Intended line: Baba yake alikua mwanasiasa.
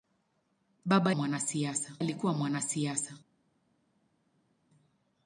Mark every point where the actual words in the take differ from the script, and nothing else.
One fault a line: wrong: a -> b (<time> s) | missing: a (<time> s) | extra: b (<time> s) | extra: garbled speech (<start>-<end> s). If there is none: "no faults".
wrong: yake -> mwanasiasa (1.1 s)